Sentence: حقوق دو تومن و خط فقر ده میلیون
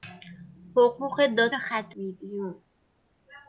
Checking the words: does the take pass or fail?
fail